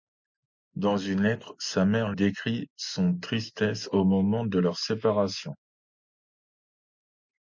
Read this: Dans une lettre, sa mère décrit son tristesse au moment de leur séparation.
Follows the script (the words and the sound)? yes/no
yes